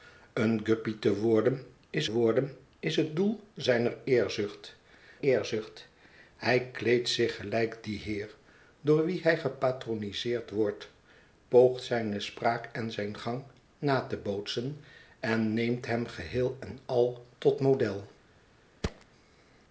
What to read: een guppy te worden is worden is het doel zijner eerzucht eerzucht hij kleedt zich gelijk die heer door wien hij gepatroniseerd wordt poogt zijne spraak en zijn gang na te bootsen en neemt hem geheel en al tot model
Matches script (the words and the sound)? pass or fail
fail